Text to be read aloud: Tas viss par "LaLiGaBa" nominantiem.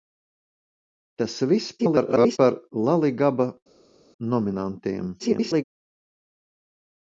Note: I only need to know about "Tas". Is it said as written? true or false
true